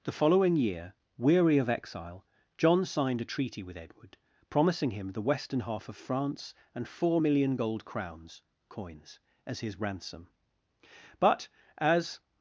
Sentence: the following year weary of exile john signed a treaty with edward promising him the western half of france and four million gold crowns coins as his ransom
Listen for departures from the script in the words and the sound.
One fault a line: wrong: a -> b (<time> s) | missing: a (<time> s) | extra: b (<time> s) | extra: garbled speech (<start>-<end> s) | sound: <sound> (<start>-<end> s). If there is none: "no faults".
extra: but as (11.2 s)